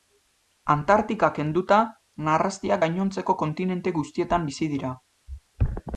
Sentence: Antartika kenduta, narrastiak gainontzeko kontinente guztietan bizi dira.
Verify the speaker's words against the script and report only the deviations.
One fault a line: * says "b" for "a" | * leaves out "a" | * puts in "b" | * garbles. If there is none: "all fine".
all fine